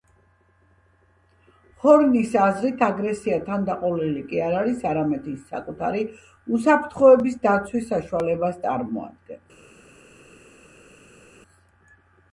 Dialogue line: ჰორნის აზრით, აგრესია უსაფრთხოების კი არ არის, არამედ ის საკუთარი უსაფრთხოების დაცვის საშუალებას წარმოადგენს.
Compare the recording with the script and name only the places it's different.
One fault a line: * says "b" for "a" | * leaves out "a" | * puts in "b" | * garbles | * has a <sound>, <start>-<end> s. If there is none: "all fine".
* says "თანდაყოლილი" for "უსაფრთხოების"